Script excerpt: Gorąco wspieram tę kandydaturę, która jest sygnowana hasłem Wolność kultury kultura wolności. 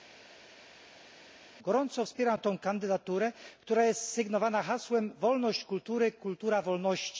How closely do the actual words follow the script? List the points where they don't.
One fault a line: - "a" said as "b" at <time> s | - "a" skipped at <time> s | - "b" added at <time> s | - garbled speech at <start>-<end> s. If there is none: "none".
none